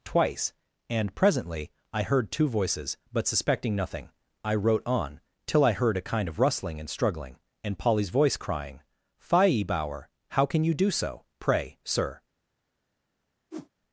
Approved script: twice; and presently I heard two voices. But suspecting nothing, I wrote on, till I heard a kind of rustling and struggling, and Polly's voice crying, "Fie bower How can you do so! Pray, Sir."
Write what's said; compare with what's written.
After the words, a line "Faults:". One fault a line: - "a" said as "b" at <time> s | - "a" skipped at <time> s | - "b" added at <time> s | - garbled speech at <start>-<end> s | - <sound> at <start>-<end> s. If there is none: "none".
twice; and presently I heard two voices. But suspecting nothing, I wrote on, till I heard a kind of rustling and struggling, and Polly's voice crying, "Fie bower How can you do so! Pray, Sir."
Faults:
- whoosh at 13.5-13.7 s